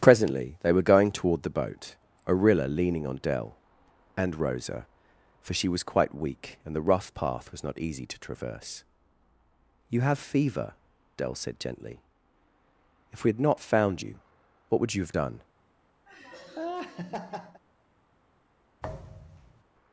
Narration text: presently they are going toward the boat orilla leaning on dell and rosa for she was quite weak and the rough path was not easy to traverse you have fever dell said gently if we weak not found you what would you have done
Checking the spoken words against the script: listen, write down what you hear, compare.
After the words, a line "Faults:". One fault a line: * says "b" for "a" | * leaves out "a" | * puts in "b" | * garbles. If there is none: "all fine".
presently they were going toward the boat orilla leaning on dell and rosa for she was quite weak and the rough path was not easy to traverse you have fever dell said gently if we had not found you what would you have done
Faults:
* says "were" for "are"
* says "had" for "weak"